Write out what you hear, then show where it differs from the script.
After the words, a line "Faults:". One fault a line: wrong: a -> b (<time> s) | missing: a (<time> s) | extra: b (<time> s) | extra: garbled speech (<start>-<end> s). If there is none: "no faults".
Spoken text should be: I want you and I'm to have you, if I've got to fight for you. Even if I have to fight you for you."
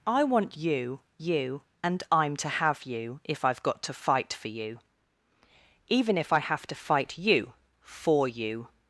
I want you you and I'm to have you, if I've got to fight for you. Even if I have to fight you for you."
Faults:
extra: you (1.2 s)